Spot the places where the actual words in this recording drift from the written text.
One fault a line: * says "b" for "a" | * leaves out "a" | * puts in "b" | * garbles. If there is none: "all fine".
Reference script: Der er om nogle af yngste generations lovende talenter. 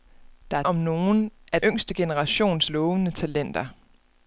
all fine